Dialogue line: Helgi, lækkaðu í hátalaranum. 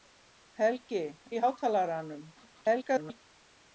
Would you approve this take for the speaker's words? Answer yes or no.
no